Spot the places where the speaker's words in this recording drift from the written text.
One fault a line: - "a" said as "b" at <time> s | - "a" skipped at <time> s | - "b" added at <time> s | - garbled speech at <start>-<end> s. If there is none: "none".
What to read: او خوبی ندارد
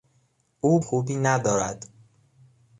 none